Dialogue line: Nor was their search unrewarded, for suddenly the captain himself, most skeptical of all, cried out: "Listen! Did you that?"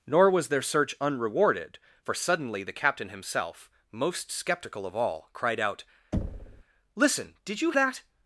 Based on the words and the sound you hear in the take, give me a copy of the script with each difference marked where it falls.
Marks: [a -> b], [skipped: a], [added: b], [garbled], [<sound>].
Nor was their search unrewarded, for suddenly the captain himself, most skeptical of all, cried out: [thud] "Listen! Did you that?"